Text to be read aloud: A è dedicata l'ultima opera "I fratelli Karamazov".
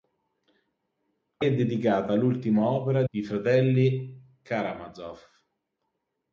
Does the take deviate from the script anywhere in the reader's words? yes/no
no